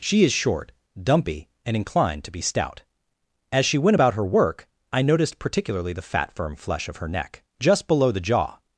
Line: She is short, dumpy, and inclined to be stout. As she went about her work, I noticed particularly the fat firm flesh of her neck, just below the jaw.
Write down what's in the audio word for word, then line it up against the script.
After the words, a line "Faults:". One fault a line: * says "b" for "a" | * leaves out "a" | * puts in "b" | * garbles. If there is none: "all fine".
She is short, dumpy, and inclined to be stout. As she went about her work, I noticed particularly the fat firm flesh of her neck, just below the jaw.
Faults:
all fine